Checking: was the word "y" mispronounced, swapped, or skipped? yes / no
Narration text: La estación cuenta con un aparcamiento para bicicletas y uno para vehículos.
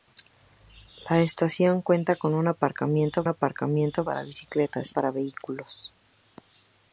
yes